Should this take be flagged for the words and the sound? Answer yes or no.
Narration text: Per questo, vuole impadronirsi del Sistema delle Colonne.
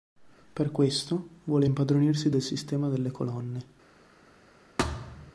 yes